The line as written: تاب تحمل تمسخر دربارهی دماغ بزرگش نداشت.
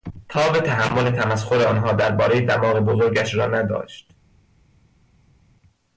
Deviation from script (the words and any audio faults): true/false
true